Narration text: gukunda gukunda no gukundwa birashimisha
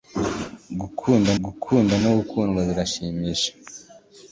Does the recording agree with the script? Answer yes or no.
yes